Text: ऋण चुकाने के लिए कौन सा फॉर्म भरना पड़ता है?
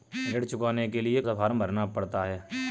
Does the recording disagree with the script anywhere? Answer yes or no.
yes